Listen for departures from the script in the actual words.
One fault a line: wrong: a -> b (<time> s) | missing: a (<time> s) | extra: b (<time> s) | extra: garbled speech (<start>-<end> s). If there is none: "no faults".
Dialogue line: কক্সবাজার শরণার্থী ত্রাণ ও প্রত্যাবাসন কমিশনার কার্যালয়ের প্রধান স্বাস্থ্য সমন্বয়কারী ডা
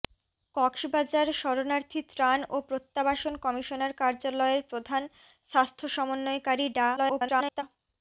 extra: garbled speech (7.0-7.6 s)